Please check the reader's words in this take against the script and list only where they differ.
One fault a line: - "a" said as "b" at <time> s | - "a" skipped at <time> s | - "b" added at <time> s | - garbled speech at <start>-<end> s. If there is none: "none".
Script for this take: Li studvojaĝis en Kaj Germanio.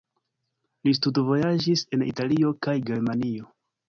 - "Italio" added at 2.0 s